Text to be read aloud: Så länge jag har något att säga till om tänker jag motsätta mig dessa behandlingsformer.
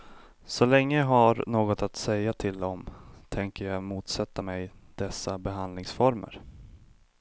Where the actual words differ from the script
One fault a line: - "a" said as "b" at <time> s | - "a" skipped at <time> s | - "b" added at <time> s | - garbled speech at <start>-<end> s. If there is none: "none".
none